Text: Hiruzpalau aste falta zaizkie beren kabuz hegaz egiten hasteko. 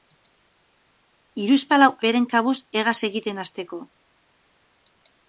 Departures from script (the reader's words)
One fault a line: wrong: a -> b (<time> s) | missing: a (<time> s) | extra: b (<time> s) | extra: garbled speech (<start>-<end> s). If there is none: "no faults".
missing: aste falta zaizkie (1.9 s)